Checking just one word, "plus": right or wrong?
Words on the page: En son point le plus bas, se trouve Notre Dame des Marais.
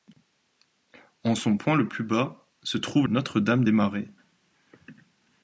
right